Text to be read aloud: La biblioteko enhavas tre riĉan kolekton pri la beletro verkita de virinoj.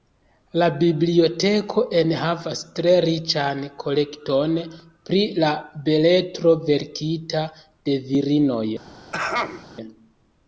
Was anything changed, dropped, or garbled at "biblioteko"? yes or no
no